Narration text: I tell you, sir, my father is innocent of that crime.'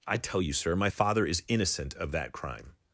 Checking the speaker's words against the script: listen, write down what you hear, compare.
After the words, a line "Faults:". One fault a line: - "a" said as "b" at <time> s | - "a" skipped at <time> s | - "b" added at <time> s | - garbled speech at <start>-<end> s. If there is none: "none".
I tell you, sir, my father is innocent of that crime.'
Faults:
none